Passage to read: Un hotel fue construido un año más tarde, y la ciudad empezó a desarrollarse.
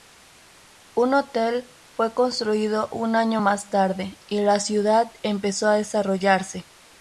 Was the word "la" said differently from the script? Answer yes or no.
no